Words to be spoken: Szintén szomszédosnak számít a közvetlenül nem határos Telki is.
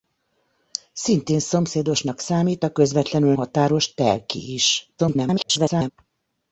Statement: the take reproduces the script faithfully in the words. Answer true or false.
false